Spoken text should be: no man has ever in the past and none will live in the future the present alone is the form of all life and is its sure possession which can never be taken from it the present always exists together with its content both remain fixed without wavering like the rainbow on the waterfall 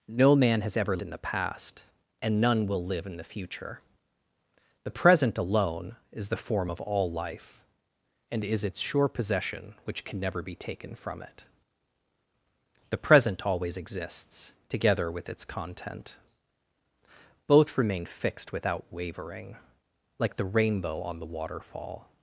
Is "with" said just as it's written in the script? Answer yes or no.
yes